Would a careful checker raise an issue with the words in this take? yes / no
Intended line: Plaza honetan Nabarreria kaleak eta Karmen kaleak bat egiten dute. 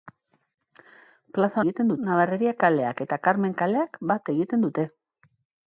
yes